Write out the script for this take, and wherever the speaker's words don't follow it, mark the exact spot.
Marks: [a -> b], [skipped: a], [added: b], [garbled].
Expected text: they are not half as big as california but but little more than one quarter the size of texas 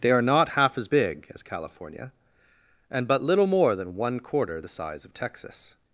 they are not half as big as california [but -> and] but little more than one quarter the size of texas